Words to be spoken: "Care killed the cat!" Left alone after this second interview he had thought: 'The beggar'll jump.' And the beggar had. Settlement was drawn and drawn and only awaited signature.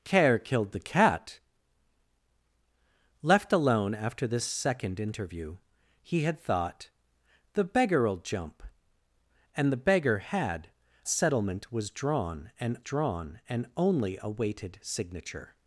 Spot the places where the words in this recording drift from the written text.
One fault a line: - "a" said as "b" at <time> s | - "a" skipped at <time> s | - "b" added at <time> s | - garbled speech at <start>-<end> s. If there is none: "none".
none